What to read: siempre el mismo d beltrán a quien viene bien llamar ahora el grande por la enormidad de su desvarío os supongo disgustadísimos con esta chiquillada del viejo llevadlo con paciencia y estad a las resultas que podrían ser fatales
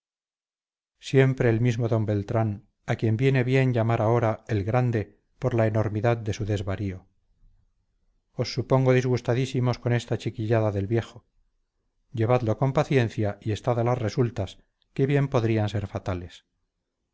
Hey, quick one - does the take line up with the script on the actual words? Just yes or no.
no